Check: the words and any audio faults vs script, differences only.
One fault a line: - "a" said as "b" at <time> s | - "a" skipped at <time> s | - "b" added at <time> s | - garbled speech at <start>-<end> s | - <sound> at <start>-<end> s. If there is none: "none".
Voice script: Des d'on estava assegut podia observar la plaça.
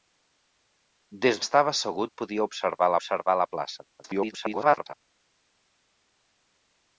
- "d'on" skipped at 1.4 s
- "observar" added at 3.0 s
- garbled speech at 4.0-4.9 s